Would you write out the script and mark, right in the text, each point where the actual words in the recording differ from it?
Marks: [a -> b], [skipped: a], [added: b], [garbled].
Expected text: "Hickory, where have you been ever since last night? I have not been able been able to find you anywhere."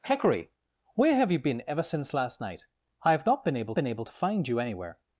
"Hickory, where have you been ever since last night? I have not been able been able to find you anywhere."